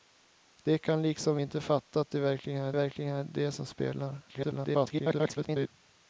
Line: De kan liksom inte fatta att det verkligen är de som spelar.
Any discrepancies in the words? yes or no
yes